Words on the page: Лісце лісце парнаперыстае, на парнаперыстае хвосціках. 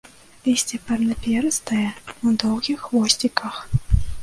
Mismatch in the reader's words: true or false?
true